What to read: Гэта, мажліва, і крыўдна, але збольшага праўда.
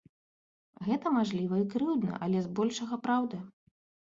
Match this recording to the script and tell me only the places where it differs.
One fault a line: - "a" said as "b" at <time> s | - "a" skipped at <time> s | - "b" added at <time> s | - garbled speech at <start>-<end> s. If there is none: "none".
none